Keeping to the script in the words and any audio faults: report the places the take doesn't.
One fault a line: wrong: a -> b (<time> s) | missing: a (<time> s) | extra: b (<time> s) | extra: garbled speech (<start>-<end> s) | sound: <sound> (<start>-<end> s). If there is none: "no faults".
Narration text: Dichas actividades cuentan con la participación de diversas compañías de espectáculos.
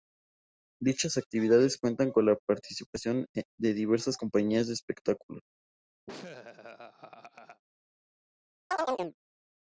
sound: laugh (6.1-7.6 s)
sound: chirp (8.7-9.2 s)